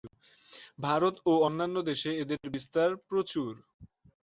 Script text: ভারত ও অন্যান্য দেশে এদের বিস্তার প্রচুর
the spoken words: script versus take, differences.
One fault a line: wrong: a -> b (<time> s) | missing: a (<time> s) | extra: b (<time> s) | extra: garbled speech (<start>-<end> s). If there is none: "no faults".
no faults